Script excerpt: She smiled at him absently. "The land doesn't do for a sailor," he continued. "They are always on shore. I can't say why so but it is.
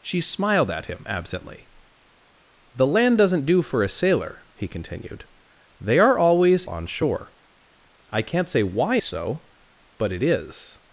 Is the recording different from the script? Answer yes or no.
no